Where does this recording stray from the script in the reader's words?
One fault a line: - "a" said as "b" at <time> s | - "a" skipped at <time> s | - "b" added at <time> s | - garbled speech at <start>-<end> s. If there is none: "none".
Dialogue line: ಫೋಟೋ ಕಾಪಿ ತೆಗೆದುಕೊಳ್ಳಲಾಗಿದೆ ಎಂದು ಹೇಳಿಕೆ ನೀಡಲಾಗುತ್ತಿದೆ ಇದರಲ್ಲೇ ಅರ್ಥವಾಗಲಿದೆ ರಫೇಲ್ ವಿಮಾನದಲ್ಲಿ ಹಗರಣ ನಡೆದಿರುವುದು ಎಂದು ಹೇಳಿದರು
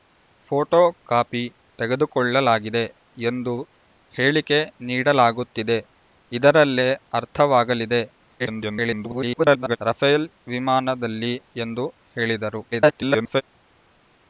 - garbled speech at 8.4-9.8 s
- "ಹಗರಣ ನಡೆದಿರುವುದು" skipped at 11.3 s
- garbled speech at 12.7-13.4 s